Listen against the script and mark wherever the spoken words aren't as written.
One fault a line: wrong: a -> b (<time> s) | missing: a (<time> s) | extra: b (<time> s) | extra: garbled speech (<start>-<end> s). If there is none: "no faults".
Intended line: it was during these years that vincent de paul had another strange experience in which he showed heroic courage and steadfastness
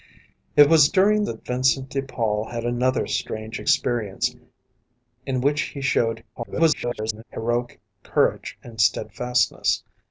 missing: these years (1.3 s)
extra: garbled speech (6.4-7.2 s)